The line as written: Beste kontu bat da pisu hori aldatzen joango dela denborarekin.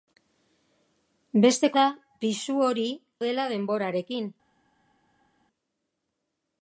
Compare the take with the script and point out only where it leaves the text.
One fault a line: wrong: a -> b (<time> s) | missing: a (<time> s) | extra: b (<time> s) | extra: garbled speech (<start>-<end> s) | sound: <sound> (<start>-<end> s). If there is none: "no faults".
missing: kontu bat (1.7 s)
missing: aldatzen joango (2.9 s)